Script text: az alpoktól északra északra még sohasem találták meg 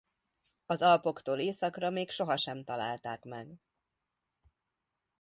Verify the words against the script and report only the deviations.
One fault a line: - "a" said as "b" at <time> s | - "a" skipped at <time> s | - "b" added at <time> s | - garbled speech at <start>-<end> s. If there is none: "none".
- "északra" skipped at 1.9 s